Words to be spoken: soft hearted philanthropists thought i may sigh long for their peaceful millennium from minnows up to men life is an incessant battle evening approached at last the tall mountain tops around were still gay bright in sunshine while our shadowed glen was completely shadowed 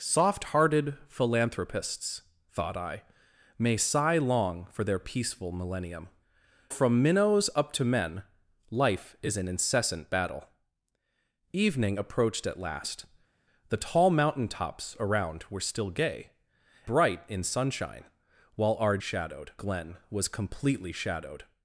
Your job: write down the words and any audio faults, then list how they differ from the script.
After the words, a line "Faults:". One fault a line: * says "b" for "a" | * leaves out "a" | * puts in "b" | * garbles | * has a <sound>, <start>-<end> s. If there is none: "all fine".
soft hearted philanthropists thought i may sigh long for their peaceful millennium from minnows up to men life is an incessant battle evening approached at last the tall mountain tops around were still gay bright in sunshine while our shadowed glen was completely shadowed
Faults:
all fine